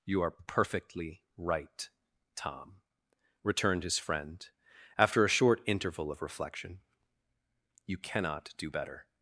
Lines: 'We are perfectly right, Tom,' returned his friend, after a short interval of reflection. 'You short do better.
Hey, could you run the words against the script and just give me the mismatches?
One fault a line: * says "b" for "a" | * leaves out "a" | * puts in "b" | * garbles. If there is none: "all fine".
* says "You" for "We"
* says "cannot" for "short"